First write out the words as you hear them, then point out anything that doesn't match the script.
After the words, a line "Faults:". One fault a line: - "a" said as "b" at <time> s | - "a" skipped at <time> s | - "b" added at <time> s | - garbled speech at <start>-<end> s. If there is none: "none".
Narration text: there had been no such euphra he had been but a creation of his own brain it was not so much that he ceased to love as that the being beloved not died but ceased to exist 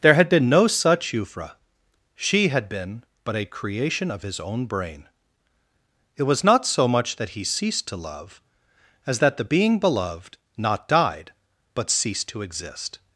there had been no such euphra she had been but a creation of his own brain it was not so much that he ceased to love as that the being beloved not died but ceased to exist
Faults:
- "he" said as "she" at 2.1 s